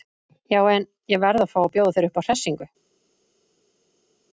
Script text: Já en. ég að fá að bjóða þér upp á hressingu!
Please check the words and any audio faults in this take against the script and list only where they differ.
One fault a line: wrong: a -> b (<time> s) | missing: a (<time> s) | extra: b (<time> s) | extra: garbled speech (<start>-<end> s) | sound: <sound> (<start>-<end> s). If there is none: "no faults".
extra: verð (1.2 s)